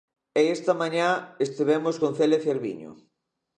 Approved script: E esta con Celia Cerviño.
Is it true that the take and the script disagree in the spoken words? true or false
true